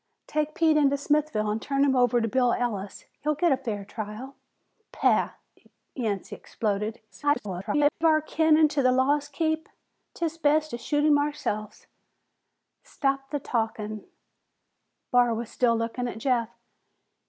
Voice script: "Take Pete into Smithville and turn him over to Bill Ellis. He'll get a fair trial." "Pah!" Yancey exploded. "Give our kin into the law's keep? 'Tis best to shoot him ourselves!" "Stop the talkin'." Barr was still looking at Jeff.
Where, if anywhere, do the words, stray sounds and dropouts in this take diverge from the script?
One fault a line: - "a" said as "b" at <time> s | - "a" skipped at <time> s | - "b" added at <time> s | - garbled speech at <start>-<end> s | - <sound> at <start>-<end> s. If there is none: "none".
- garbled speech at 7.1-7.9 s